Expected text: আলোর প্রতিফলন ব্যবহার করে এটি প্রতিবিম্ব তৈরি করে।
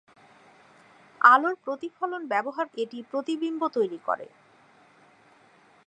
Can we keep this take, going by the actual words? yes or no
no